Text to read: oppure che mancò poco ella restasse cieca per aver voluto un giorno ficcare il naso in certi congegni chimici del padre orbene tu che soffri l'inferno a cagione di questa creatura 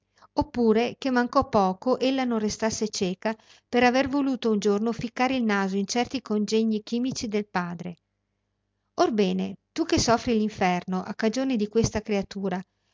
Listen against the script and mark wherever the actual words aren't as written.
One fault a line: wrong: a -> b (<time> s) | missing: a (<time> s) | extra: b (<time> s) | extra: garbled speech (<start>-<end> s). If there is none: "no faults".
extra: non (2.2 s)